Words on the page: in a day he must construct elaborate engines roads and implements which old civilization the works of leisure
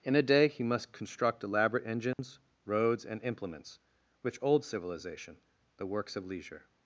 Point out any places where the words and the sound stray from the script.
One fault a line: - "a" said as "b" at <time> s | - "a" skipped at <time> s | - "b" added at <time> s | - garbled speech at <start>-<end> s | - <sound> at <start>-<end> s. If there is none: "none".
- dropout at 2.1-2.2 s